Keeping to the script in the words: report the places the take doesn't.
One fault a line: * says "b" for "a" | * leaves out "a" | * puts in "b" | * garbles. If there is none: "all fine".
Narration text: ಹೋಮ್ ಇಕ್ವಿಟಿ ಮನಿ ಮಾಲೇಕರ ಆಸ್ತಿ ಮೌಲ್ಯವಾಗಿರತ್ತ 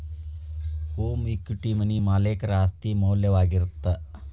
all fine